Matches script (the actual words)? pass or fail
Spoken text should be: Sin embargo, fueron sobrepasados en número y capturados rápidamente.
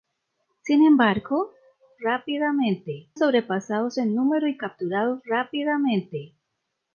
fail